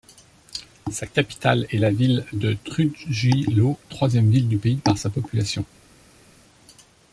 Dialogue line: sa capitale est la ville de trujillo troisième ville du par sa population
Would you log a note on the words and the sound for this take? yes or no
yes